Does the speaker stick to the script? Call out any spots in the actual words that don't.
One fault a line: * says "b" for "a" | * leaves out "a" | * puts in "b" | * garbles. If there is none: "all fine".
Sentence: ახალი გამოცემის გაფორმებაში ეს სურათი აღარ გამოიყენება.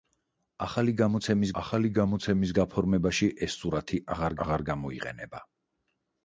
* puts in "ახალი გამოცემის"
* puts in "აღარ"